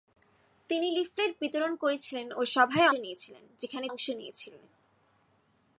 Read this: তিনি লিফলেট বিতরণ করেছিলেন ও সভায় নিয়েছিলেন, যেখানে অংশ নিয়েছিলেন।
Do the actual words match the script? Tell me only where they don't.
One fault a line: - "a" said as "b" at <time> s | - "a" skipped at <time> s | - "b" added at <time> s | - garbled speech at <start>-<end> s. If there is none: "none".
none